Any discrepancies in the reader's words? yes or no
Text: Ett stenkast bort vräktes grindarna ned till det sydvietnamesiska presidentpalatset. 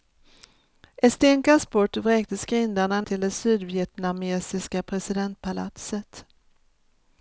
yes